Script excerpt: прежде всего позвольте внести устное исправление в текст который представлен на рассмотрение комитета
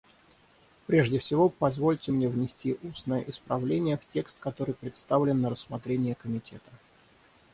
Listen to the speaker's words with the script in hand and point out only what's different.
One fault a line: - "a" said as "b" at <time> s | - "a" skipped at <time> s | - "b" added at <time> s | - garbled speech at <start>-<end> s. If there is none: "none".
- "мне" added at 2.1 s